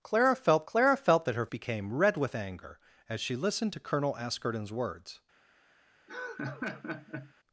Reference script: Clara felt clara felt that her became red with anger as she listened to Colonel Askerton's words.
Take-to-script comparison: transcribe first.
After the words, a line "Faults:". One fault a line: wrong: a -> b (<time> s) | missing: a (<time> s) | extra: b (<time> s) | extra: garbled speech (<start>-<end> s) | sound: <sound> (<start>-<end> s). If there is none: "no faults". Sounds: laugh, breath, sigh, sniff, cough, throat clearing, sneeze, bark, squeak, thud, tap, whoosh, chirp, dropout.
Clara felt clara felt that her became red with anger as she listened to Colonel Askerton's words.
Faults:
sound: laugh (6.1-7.3 s)